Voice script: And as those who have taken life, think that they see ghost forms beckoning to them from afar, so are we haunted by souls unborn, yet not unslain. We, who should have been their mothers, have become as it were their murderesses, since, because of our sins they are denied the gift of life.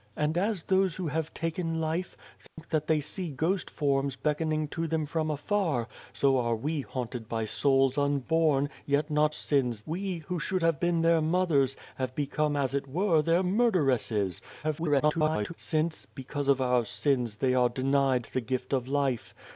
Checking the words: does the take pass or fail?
fail